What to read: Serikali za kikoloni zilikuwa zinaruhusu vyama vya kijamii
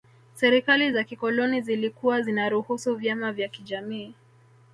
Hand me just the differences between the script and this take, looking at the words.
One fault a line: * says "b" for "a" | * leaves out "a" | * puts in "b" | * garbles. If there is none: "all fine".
all fine